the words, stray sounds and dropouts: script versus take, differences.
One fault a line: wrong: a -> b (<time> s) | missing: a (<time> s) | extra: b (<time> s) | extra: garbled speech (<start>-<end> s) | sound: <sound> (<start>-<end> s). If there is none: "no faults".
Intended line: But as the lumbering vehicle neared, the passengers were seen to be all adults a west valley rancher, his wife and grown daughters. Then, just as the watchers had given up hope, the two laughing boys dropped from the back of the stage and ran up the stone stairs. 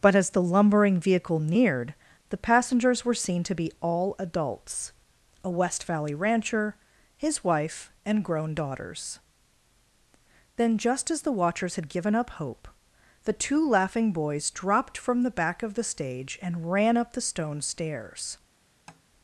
sound: tap (18.9-19.0 s)